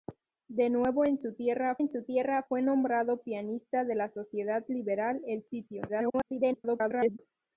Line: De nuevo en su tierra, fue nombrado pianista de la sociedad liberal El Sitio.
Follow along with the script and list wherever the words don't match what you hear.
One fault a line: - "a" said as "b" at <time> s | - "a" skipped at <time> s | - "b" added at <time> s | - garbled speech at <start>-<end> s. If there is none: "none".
- "en su tierra" added at 1.8 s
- garbled speech at 5.9-7.2 s